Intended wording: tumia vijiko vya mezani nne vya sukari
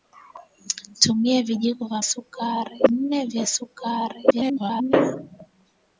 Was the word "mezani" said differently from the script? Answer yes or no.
yes